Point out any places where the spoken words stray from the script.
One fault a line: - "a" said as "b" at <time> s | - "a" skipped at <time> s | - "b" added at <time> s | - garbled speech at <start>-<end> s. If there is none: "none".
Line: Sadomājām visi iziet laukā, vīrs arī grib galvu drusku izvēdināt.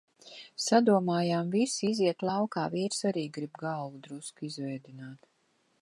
none